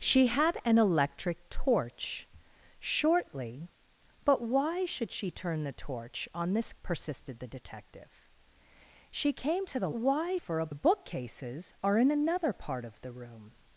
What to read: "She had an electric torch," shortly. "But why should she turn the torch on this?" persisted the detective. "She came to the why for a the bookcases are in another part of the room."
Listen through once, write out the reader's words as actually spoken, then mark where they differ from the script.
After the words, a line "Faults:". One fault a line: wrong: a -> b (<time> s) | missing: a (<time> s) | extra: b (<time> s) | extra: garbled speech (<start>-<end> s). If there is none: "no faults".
"She had an electric torch," shortly. "But why should she turn the torch on this?" persisted the detective. "She came to the why for a the bookcases are in another part of the room."
Faults:
no faults